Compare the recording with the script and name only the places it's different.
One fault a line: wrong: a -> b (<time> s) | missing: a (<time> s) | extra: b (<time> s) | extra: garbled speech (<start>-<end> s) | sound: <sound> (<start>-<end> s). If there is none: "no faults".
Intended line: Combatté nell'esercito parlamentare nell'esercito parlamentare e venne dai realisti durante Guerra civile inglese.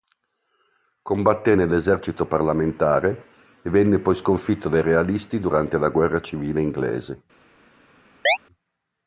wrong: nell'esercito parlamentare e venne -> e venne poi sconfitto (3.6 s)
extra: la (5.8 s)
sound: chirp (8.3-8.4 s)